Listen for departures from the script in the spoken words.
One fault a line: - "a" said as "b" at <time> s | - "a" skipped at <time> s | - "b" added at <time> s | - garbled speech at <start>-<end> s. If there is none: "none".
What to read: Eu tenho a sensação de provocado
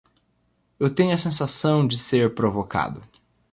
- "ser" added at 1.9 s